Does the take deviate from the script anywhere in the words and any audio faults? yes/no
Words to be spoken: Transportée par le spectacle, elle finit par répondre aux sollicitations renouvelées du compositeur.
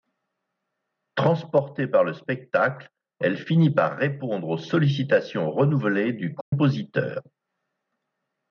yes